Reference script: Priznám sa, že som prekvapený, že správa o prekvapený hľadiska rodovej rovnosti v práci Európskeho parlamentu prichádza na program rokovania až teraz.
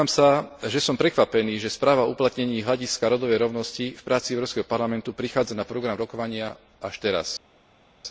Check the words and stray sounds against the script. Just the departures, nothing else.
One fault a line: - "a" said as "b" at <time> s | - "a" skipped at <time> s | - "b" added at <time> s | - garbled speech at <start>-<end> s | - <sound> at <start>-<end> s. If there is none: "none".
- "prekvapený" said as "uplatnení" at 2.2 s